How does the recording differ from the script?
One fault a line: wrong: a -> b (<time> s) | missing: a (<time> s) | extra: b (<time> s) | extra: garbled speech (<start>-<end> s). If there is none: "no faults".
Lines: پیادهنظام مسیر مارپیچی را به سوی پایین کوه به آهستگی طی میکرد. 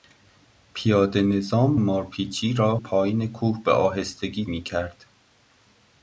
missing: مسیر (1.7 s)
missing: به سوی (2.8 s)
missing: طی (4.4 s)